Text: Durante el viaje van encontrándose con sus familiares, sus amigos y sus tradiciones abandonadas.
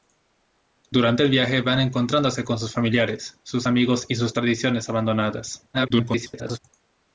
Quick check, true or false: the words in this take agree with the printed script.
false